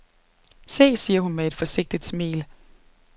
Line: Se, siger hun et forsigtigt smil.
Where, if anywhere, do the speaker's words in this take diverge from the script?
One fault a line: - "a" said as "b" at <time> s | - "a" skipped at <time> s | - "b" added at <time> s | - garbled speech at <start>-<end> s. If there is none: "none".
- "med" added at 1.3 s